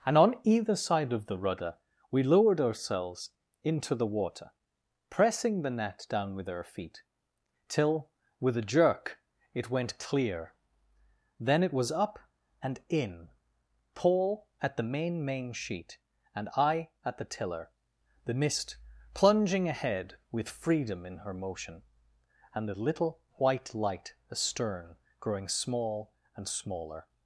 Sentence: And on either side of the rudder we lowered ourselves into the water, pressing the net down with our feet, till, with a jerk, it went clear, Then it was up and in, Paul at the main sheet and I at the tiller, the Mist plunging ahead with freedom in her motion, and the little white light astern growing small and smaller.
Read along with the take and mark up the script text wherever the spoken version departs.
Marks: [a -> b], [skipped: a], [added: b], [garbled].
And on either side of the rudder we lowered ourselves into the water, pressing the net down with our feet, till, with a jerk, it went clear, Then it was up and in, Paul at the main [added: main] sheet and I at the tiller, the Mist plunging ahead with freedom in her motion, and the little white light astern growing small and smaller.